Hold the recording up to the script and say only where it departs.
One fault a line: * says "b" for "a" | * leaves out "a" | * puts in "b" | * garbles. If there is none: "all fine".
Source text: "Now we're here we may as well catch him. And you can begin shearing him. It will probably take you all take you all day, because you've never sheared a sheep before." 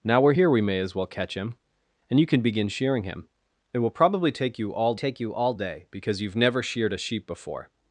all fine